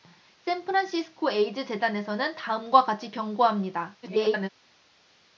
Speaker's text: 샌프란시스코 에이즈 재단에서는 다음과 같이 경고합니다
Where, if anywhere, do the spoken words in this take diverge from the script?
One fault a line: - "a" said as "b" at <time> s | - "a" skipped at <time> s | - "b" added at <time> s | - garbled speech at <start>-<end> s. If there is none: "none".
- garbled speech at 4.0-4.5 s